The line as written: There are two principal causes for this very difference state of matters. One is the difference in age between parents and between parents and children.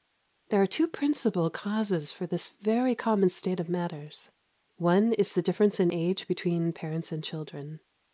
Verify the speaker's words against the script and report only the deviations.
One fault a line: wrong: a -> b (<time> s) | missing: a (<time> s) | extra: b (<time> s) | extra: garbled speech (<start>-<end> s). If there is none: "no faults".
wrong: difference -> common (3.0 s)
missing: between parents and (7.2 s)